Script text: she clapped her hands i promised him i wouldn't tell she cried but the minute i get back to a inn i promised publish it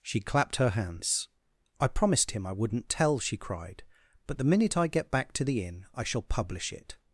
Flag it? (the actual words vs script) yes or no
yes